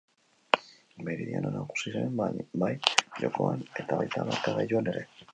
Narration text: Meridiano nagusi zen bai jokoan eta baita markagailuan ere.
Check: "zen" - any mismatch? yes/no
no